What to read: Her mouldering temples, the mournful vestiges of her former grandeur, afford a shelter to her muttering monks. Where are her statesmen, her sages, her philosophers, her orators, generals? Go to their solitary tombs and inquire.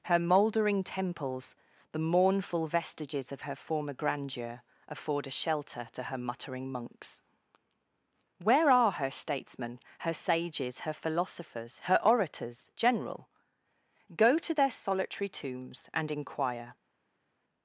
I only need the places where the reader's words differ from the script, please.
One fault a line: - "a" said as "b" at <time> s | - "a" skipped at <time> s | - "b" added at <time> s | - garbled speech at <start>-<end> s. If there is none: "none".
- "generals" said as "general" at 12.8 s